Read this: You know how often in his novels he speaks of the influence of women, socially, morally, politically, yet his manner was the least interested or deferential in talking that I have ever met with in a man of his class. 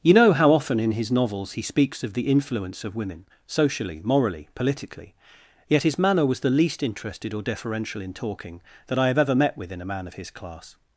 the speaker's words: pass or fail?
pass